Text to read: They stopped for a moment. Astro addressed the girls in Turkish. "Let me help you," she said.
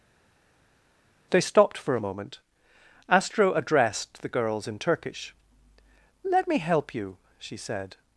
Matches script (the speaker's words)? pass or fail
pass